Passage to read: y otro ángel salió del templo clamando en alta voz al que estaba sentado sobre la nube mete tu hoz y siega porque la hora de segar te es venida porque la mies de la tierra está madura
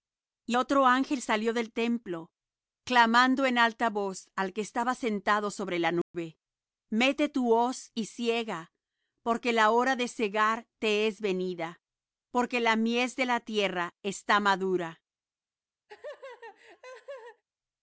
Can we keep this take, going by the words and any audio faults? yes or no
no